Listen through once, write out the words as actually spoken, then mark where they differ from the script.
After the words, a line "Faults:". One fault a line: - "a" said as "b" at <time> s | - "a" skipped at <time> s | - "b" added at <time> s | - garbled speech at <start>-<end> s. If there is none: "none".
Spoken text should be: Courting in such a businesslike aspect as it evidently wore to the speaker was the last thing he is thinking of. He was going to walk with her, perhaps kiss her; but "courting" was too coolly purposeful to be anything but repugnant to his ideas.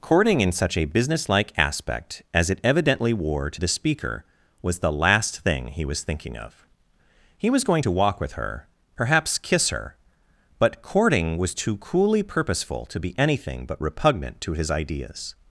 Courting in such a businesslike aspect as it evidently wore to the speaker was the last thing he was thinking of. He was going to walk with her, perhaps kiss her; but "courting" was too coolly purposeful to be anything but repugnant to his ideas.
Faults:
- "is" said as "was" at 5.8 s